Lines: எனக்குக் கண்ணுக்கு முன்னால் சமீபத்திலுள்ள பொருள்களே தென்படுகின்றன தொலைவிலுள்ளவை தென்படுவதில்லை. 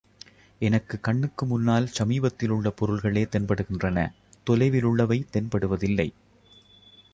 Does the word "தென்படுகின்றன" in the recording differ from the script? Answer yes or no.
no